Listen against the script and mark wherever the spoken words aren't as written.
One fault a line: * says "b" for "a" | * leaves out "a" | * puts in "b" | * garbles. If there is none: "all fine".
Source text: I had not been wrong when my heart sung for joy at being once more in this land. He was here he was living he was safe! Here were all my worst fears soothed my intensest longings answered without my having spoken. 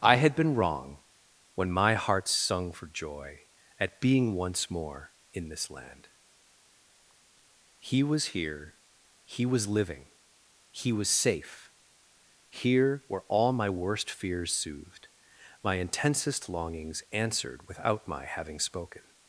* leaves out "not"